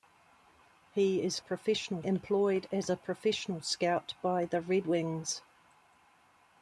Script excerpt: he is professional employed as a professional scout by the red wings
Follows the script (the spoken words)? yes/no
yes